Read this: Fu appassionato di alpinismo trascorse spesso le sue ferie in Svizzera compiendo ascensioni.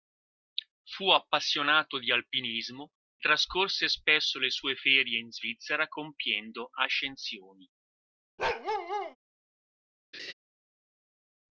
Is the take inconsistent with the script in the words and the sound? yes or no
yes